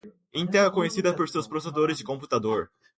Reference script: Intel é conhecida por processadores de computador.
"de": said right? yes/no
yes